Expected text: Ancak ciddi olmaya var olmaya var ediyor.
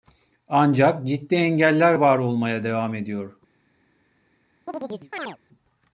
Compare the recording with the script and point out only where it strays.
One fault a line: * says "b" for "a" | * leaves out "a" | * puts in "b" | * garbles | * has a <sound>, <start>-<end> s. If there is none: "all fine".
* says "engeller" for "olmaya"
* says "devam" for "var"
* has a chirp, 4.7-5.4 s